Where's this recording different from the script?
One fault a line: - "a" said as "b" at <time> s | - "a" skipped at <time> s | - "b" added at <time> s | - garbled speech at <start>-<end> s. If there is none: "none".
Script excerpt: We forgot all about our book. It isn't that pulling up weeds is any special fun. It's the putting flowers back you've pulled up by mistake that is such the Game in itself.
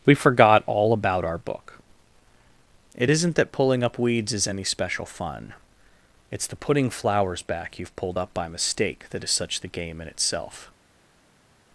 none